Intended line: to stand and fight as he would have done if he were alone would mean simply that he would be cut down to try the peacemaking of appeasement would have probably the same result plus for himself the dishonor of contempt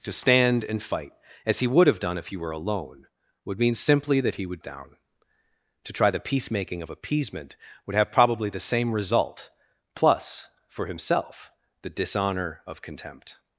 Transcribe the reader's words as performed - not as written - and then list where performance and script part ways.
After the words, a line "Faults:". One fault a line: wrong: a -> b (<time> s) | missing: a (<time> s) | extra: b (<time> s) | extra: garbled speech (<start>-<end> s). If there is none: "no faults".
to stand and fight as he would have done if he were alone would mean simply that he would down to try the peacemaking of appeasement would have probably the same result plus for himself the dishonor of contempt
Faults:
missing: be cut (4.6 s)